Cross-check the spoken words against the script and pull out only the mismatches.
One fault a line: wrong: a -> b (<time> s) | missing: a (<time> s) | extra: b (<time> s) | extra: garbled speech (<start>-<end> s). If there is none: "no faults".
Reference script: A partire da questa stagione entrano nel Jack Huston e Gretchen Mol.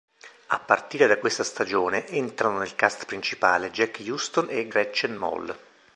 extra: cast principale (2.8 s)